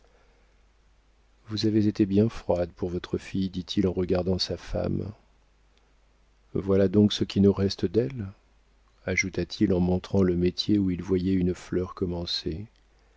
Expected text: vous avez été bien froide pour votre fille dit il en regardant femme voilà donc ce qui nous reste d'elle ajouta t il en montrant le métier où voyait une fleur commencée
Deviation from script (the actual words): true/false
true